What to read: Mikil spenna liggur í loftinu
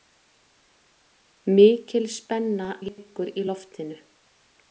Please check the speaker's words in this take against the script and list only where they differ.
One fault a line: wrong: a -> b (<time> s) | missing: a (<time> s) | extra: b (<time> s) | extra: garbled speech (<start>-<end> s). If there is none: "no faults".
no faults